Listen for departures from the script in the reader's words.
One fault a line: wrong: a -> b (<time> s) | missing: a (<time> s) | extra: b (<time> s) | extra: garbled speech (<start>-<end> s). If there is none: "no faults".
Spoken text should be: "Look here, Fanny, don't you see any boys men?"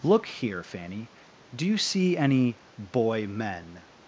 wrong: don't -> do (1.5 s)
wrong: boys -> boy (2.8 s)